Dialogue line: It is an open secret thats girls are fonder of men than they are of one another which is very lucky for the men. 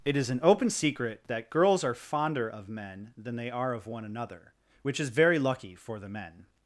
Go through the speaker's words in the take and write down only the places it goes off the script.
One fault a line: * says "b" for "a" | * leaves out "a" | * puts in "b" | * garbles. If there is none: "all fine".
* says "that" for "thats"